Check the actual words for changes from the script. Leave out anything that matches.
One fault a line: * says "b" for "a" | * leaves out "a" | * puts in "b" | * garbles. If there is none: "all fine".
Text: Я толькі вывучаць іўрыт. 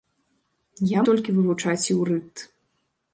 all fine